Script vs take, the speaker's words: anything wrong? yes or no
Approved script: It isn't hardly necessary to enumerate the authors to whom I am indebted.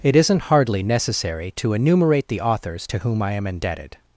no